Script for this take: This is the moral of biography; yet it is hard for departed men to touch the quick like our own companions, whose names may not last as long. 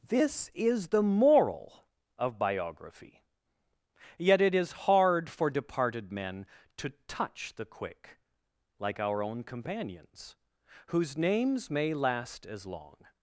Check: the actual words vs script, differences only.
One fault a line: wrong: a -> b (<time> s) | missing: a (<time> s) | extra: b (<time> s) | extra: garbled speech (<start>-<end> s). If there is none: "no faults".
missing: not (11.9 s)